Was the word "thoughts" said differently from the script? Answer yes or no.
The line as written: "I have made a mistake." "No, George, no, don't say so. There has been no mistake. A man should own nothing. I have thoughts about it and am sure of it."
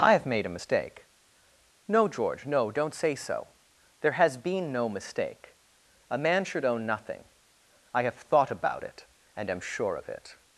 yes